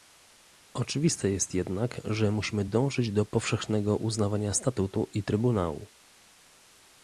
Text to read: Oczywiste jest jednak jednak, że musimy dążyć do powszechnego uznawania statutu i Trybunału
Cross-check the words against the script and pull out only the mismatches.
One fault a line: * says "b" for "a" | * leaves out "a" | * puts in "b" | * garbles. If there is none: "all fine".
* leaves out "jednak"